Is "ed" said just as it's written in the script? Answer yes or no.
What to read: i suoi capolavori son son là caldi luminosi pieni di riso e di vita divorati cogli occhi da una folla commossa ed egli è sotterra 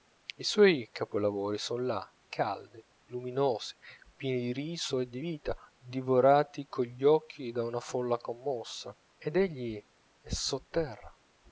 yes